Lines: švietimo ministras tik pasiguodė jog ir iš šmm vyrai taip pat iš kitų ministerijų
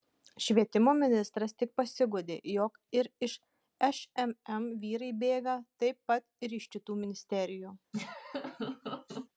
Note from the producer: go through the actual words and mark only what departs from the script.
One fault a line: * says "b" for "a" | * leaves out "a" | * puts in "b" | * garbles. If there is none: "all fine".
* puts in "bėga"
* puts in "ir"